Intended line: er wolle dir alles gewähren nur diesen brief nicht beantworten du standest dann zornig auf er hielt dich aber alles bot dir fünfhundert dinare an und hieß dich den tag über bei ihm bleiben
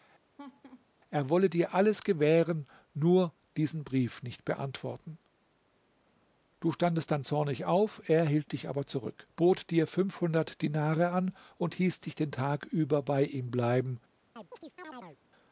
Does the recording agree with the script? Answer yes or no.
no